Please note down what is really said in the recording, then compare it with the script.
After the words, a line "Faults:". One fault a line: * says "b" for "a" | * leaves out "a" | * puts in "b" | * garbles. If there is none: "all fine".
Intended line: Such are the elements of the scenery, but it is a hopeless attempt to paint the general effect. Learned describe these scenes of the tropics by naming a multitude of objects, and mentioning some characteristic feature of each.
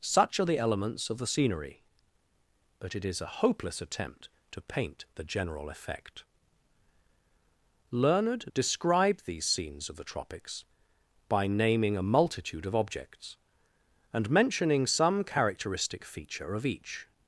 Such are the elements of the scenery, but it is a hopeless attempt to paint the general effect. Learned describe these scenes of the tropics by naming a multitude of objects, and mentioning some characteristic feature of each.
Faults:
all fine